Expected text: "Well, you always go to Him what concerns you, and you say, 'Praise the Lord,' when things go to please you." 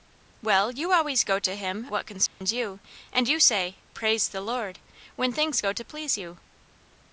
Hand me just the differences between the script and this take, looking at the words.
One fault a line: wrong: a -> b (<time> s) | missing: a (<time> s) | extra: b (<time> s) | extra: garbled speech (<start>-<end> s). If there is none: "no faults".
no faults